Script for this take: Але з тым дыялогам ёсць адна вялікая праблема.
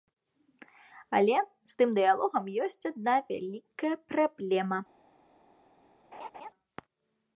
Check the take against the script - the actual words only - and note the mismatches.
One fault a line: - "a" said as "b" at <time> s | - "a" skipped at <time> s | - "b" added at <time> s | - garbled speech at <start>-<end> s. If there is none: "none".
none